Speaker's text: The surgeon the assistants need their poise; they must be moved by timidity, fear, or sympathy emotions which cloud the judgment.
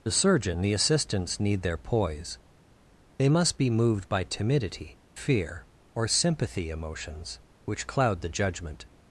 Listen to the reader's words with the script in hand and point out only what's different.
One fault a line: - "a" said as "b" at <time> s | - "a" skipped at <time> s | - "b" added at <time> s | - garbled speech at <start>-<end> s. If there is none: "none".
none